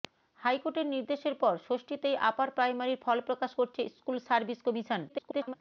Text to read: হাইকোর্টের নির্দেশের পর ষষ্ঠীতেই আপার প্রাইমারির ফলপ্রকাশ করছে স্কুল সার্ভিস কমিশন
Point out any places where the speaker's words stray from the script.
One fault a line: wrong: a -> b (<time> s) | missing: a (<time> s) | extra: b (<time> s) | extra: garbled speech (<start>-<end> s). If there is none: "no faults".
extra: garbled speech (5.1-5.5 s)